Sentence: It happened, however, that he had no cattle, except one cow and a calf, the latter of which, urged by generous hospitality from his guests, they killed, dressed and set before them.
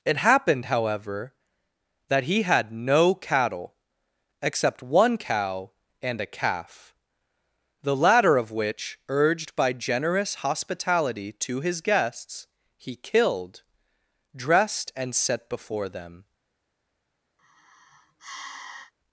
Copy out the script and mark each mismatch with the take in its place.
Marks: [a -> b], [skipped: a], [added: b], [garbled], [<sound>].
It happened, however, that he had no cattle, except one cow and a calf, the latter of which, urged by generous hospitality [from -> to] his guests, [they -> he] killed, dressed and set before them. [sigh]